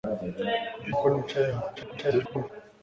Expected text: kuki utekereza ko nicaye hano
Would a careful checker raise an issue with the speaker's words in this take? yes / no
yes